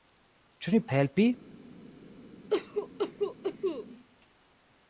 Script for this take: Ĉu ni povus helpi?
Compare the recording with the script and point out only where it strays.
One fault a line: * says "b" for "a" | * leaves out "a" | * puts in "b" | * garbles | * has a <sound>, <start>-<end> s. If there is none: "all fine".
* leaves out "povus"
* has a cough, 2.5-3.9 s